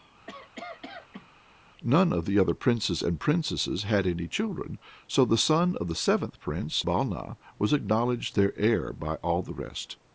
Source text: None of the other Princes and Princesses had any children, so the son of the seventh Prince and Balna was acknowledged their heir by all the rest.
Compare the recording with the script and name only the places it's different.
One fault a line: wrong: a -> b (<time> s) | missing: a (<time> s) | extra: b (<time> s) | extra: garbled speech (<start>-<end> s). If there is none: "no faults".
missing: and (6.8 s)